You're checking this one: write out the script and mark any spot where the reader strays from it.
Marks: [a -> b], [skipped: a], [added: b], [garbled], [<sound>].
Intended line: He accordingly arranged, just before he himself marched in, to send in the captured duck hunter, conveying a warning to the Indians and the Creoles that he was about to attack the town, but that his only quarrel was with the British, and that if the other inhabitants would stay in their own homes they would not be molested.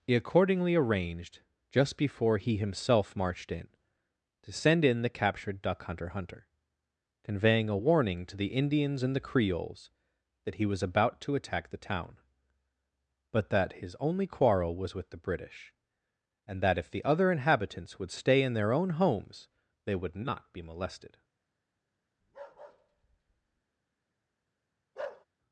He accordingly arranged, just before he himself marched in, to send in the captured duck hunter, [added: hunter] conveying a warning to the Indians and the Creoles that he was about to attack the town, but that his only quarrel was with the British, and that if the other inhabitants would stay in their own homes they would not be molested. [bark] [bark]